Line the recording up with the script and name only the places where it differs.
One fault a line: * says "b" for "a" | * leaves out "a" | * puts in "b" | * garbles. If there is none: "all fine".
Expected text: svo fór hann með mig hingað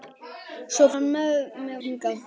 * leaves out "fór"
* leaves out "mig"